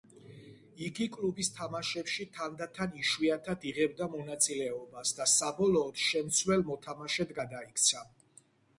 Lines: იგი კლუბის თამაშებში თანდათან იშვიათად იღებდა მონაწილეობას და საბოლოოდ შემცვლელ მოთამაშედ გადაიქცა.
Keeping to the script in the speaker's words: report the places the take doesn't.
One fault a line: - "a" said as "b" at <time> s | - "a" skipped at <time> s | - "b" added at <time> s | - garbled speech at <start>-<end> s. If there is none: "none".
none